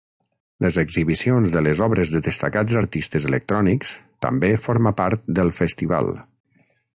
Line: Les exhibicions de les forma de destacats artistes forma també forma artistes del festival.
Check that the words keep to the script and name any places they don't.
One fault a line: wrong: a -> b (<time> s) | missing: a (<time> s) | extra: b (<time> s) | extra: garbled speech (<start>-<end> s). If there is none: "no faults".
wrong: forma -> obres (1.9 s)
wrong: forma -> electrònics (3.3 s)
wrong: artistes -> part (5.0 s)